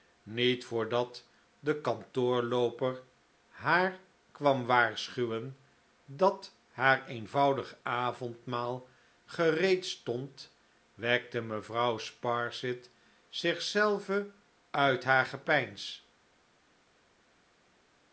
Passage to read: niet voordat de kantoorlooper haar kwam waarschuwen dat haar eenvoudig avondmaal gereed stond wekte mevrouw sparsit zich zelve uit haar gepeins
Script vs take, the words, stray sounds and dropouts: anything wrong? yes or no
no